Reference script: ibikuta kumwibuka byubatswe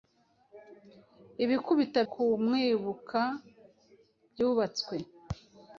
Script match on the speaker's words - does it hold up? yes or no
yes